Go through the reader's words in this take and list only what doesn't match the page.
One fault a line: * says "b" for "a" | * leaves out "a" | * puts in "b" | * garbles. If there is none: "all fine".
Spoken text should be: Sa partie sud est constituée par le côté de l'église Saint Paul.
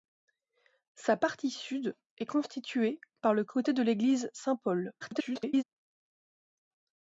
* garbles